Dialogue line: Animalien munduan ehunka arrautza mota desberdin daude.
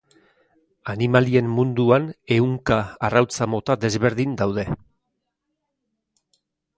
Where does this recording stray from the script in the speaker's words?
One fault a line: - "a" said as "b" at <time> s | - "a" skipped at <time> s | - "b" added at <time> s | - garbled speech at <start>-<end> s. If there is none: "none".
none